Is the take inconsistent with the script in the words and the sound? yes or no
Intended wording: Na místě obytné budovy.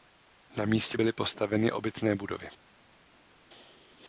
yes